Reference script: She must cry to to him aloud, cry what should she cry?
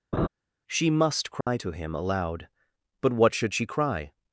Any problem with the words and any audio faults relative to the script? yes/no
yes